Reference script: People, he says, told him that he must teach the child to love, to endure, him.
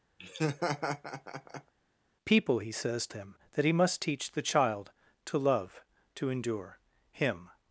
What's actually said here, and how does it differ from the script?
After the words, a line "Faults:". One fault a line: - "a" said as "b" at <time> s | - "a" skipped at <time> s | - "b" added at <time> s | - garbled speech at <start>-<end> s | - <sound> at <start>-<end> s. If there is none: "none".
People, he says, him that he must teach the child to love, to endure, him.
Faults:
- laugh at 0.2-1.7 s
- "told" skipped at 3.1 s